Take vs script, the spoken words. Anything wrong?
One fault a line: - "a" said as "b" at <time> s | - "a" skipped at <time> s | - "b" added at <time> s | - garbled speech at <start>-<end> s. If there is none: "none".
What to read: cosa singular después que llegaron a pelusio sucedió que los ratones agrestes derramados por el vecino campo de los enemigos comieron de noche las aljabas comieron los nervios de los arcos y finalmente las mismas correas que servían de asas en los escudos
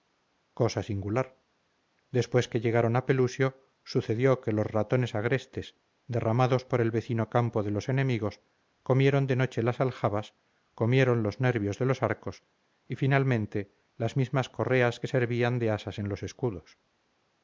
none